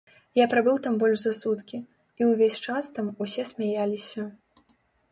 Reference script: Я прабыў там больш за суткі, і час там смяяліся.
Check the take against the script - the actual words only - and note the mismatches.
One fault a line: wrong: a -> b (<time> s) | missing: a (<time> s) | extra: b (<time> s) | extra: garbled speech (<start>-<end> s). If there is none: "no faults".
extra: ўвесь (2.3 s)
extra: усе (3.3 s)